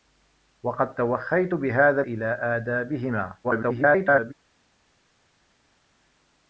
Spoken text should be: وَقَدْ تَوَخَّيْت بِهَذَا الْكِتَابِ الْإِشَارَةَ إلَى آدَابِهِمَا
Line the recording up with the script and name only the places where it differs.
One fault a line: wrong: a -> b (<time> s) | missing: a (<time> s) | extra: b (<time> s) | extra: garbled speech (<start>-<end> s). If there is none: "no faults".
missing: الْكِتَابِ الْإِشَارَةَ (2.0 s)
extra: garbled speech (3.4-4.3 s)